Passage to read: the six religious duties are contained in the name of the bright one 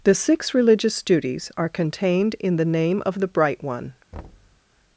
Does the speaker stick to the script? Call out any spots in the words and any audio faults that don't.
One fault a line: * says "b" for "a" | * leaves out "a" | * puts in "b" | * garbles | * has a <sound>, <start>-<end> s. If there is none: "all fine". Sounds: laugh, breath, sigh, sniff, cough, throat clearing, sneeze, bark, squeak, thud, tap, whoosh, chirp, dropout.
* has a thud, 4.1-4.6 s